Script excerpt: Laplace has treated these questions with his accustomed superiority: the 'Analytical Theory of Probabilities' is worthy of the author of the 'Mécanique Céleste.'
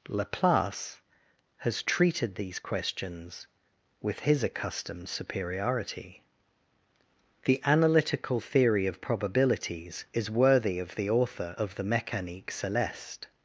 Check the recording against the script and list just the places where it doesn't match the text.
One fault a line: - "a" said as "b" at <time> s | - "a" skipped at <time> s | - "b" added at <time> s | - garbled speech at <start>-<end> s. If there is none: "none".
none